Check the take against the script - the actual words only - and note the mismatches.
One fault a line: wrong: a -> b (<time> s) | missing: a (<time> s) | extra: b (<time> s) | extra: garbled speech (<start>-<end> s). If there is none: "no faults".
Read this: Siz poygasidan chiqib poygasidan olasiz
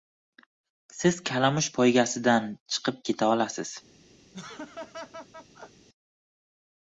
extra: kalamush (1.3 s)
wrong: poygasidan -> keta (3.1 s)